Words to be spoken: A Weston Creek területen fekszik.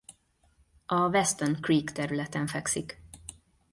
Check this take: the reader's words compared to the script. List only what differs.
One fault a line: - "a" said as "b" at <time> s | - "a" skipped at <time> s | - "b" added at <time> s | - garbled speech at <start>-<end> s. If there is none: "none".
none